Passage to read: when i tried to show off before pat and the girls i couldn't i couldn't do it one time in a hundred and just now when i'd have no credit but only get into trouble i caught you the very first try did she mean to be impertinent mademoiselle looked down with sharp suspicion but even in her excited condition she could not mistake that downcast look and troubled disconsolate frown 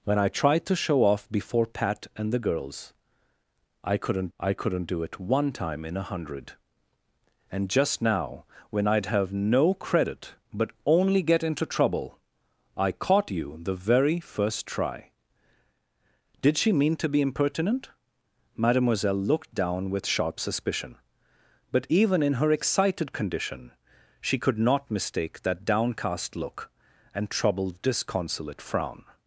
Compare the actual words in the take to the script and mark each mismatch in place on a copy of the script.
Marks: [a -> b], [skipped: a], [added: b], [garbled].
when i tried to show off before pat and the girls i couldn't i couldn't do it one time in a hundred and just now when i'd have no credit but only get into trouble i caught you the very first try did she mean to be impertinent mademoiselle looked down with sharp suspicion but even in her excited condition she could not mistake that downcast look and troubled disconsolate frown